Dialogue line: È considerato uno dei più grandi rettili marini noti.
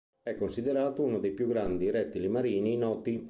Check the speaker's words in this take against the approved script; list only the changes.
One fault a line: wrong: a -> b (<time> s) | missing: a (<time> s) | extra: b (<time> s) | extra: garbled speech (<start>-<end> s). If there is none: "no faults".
no faults